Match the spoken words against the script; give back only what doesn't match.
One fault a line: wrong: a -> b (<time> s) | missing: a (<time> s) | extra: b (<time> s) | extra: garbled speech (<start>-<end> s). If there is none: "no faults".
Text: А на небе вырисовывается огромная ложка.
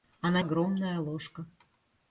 missing: небе вырисовывается (0.4 s)